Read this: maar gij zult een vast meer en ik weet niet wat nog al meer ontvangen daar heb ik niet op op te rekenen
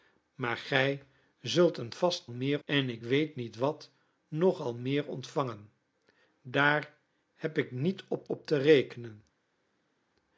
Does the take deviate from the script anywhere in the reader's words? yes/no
no